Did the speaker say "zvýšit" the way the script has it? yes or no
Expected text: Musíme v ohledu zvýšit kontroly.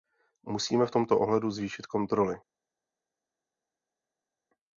yes